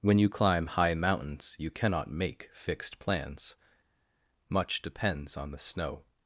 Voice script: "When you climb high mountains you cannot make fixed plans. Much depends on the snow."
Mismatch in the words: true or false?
false